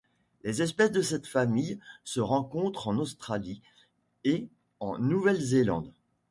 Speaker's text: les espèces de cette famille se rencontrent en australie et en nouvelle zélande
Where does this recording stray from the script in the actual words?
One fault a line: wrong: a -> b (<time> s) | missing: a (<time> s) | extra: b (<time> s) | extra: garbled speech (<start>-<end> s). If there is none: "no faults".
no faults